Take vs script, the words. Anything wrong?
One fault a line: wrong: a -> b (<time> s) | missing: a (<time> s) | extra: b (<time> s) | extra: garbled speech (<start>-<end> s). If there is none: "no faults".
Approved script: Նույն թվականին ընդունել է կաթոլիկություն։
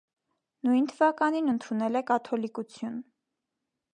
no faults